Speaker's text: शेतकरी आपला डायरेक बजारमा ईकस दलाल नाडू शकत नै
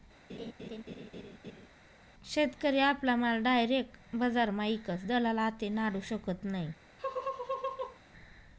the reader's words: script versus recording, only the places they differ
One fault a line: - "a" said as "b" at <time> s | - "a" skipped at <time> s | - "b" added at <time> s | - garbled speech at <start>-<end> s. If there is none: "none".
- "माल" added at 3.2 s
- "आते" added at 5.4 s